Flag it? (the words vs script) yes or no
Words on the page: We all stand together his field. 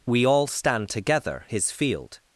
no